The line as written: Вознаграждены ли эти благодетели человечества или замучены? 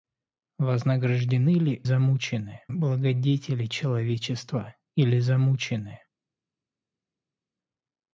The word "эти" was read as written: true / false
false